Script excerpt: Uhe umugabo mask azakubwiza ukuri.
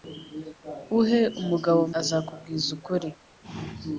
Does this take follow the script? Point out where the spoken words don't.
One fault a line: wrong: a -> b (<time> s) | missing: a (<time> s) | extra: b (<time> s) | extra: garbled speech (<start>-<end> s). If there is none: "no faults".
missing: mask (1.8 s)